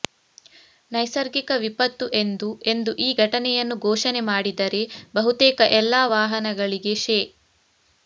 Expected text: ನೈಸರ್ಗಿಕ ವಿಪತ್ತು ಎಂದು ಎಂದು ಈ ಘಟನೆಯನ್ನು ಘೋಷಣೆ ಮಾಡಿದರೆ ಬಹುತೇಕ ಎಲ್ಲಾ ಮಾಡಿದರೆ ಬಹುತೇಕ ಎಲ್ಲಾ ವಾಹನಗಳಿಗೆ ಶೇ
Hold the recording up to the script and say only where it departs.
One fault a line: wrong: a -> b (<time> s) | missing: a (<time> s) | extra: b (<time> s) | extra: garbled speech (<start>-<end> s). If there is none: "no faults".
missing: ಮಾಡಿದರೆ ಬಹುತೇಕ ಎಲ್ಲಾ (6.0 s)